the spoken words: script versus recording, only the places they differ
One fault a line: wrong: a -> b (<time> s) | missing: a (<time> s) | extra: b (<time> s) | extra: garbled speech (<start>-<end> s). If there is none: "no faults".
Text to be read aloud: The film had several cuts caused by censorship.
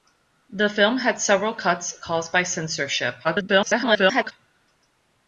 extra: garbled speech (3.2-4.3 s)